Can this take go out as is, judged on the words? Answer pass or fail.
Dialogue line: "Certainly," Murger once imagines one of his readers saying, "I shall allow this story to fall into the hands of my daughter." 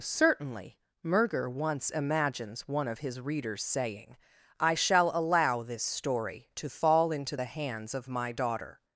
pass